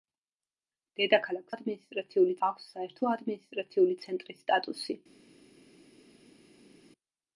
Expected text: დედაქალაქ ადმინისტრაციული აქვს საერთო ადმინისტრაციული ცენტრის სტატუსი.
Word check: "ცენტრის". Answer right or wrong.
right